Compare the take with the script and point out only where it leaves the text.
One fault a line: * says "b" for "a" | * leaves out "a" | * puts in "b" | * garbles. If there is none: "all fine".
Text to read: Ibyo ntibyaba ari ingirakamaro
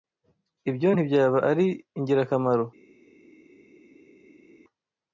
all fine